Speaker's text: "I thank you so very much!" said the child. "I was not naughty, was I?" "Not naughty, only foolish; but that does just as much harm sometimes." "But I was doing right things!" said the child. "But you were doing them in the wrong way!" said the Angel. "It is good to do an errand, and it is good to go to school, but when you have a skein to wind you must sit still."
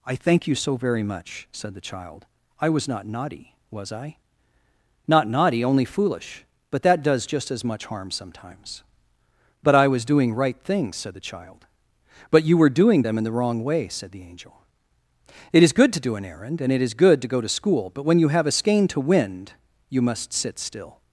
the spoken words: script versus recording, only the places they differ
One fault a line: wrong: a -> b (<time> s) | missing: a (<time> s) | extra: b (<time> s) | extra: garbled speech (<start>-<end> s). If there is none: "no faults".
no faults